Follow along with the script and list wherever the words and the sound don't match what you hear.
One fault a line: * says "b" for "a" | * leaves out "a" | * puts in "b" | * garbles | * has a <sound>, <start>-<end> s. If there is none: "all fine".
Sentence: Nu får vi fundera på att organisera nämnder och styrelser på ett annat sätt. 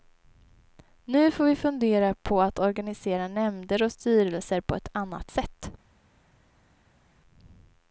all fine